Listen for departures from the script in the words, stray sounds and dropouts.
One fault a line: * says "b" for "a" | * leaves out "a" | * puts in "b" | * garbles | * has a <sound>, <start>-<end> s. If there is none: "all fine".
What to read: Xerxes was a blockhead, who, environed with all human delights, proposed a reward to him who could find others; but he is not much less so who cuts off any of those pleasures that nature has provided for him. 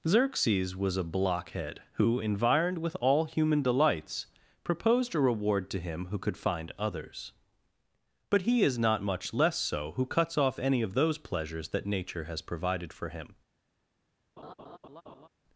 * has a laugh, 14.4-15.3 s